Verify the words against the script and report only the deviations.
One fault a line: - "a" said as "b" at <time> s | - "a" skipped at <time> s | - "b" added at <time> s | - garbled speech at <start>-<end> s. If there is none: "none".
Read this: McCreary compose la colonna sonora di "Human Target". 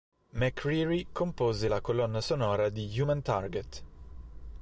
none